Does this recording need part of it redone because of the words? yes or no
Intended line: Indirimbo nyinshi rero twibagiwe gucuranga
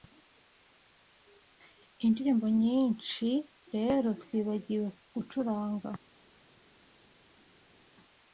no